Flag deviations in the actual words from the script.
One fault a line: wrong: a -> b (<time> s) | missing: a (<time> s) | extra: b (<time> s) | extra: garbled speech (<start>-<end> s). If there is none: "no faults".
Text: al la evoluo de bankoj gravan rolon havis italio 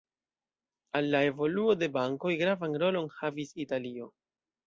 no faults